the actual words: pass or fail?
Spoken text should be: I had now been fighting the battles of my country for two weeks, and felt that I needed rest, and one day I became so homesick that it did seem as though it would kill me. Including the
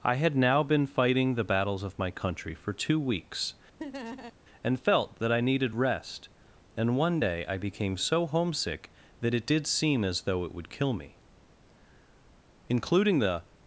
pass